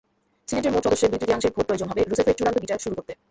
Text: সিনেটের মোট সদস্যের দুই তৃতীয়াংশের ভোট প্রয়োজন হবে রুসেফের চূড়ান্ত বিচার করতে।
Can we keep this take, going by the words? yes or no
no